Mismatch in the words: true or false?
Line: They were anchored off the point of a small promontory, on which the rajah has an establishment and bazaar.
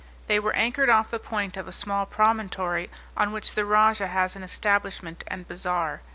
false